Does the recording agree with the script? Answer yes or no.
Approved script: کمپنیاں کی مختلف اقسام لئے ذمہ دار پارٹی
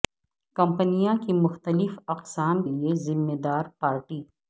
yes